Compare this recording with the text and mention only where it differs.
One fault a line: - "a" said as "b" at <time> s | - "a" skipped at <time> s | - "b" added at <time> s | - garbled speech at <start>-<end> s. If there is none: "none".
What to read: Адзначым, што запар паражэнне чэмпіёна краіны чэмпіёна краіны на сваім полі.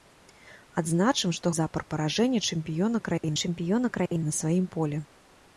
none